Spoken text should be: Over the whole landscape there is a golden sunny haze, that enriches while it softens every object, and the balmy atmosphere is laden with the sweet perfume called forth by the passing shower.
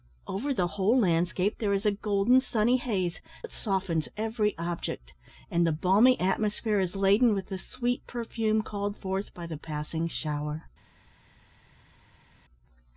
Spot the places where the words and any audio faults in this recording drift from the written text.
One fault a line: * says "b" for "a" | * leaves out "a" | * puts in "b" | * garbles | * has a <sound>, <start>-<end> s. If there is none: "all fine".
* leaves out "that enriches while"